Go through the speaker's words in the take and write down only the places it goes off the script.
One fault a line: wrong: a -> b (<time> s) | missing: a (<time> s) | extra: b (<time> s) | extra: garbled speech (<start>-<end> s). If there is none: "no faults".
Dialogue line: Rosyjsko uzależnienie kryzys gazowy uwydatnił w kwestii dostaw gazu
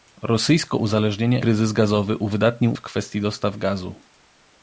no faults